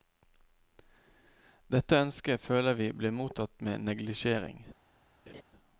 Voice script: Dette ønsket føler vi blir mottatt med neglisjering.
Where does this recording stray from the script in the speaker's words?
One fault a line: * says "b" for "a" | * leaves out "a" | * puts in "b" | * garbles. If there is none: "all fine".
all fine